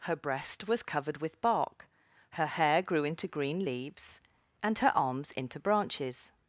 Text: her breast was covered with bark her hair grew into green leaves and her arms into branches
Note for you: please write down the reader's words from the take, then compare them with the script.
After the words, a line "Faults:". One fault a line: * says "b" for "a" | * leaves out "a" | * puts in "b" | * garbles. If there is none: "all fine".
her breast was covered with bark her hair grew into green leaves and her arms into branches
Faults:
all fine